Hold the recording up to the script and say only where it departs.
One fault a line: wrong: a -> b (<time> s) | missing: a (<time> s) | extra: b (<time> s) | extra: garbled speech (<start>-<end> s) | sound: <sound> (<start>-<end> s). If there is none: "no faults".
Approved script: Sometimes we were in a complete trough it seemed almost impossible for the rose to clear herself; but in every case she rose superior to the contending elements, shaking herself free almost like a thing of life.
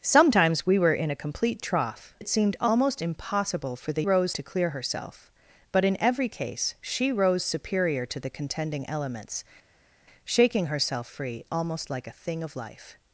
no faults